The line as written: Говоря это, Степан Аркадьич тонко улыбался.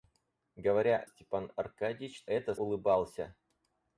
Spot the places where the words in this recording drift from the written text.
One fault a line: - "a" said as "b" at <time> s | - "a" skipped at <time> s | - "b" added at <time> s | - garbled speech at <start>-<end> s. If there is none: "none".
- "это" skipped at 1.1 s
- "тонко" said as "это" at 2.3 s